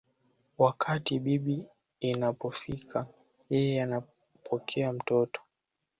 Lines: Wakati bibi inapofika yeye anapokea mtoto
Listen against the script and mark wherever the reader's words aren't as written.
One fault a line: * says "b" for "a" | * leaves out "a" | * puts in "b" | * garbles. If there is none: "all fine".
all fine